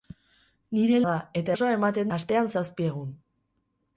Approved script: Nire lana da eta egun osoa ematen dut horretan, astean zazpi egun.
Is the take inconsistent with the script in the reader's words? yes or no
yes